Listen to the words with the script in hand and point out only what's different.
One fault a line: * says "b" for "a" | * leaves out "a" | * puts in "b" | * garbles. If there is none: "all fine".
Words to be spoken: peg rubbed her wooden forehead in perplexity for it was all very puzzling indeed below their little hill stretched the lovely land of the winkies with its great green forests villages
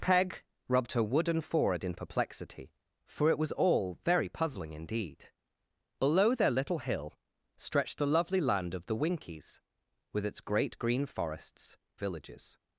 all fine